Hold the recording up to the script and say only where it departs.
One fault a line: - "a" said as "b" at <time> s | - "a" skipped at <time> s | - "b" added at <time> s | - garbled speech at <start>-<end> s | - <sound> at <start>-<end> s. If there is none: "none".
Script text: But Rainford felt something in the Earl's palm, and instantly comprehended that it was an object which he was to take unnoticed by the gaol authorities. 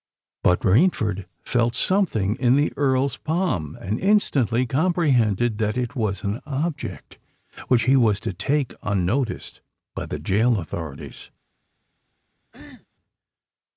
- cough at 12.5-12.9 s